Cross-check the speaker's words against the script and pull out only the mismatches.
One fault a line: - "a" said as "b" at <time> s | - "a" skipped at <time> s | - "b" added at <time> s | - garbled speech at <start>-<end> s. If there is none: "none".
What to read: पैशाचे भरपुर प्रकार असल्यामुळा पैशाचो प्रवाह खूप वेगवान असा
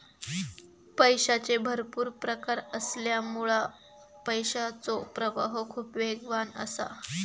none